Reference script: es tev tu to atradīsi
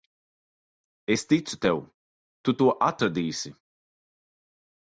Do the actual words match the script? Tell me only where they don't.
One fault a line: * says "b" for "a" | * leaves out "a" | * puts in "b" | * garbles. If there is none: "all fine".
* puts in "ticu"